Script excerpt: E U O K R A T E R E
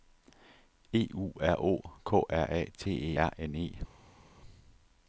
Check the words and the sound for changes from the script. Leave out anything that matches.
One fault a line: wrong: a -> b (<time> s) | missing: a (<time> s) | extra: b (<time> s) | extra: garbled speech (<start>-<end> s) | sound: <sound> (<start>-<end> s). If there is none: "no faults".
extra: R (1.4 s)
extra: N (3.4 s)